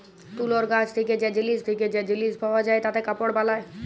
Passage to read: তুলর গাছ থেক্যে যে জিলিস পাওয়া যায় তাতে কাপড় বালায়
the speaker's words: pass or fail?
fail